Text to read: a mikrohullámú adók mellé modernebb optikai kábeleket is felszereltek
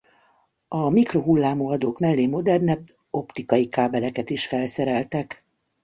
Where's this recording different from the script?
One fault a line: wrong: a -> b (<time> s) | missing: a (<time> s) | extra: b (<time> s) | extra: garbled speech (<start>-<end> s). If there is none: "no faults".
no faults